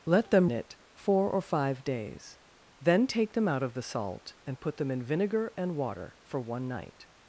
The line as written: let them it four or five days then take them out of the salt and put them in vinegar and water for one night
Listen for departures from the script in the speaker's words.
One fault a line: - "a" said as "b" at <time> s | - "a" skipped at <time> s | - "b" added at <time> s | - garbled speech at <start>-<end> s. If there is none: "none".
none